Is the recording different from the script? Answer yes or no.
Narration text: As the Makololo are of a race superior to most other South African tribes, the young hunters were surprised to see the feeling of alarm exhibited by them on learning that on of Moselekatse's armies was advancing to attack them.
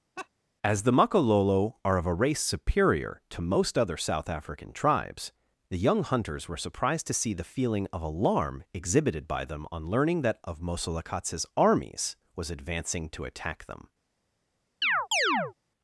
yes